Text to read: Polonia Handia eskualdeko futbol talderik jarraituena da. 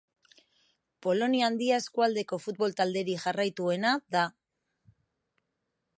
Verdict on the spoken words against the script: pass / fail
pass